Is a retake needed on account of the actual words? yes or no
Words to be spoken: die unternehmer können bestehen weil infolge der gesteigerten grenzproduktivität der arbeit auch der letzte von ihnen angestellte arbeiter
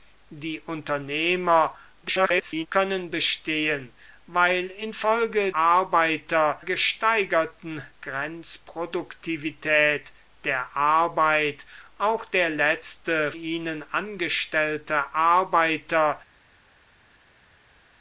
yes